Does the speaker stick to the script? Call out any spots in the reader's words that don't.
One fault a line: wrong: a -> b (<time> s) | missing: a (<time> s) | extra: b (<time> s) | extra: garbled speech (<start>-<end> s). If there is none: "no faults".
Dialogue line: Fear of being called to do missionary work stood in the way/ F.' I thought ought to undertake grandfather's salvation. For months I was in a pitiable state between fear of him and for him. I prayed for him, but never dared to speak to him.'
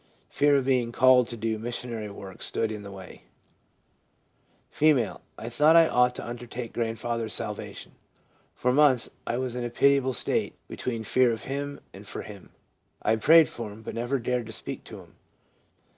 extra: I (5.7 s)